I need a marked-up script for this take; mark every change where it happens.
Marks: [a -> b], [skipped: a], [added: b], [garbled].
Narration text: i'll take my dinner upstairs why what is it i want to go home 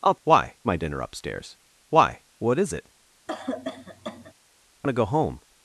i'll [take -> why] my dinner upstairs why what is it i [skipped: want] to go home